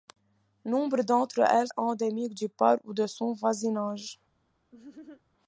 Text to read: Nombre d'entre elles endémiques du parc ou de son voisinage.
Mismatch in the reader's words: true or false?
false